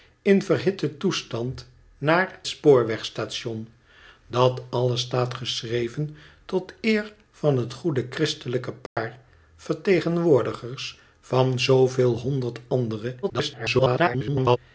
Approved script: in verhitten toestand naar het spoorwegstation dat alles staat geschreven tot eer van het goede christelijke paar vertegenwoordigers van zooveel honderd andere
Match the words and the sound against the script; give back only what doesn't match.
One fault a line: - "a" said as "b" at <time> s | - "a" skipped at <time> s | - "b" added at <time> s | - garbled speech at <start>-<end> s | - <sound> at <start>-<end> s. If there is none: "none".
- "het" skipped at 2.4 s
- dropout at 8.9-9.0 s
- garbled speech at 13.2-14.6 s